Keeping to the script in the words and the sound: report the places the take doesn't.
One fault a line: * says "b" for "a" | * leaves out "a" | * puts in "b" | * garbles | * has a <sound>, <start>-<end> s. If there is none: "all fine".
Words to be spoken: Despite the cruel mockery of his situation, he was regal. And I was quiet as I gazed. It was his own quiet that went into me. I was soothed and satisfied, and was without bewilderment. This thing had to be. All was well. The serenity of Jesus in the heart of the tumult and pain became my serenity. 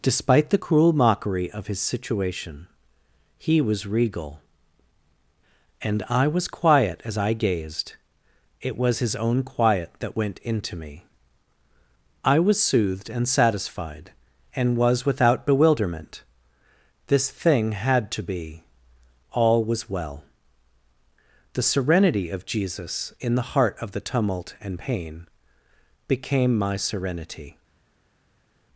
all fine